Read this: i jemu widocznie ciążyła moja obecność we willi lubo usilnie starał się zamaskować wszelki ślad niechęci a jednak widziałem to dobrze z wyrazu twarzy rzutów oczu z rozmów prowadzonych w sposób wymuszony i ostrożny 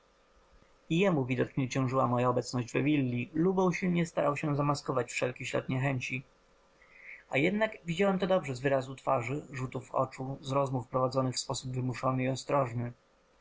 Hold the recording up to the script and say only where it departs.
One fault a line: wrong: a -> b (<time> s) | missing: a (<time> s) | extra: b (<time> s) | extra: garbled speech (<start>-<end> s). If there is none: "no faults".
no faults